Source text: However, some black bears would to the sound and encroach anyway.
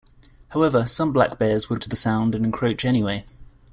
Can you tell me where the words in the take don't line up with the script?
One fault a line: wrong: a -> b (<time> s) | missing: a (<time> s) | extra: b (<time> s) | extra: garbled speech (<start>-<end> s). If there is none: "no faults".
no faults